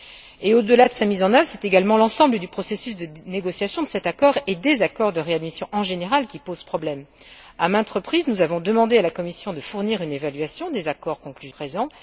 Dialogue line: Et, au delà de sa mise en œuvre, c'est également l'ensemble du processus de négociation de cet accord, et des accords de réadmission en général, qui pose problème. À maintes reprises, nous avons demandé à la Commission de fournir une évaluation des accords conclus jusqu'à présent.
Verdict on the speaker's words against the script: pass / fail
fail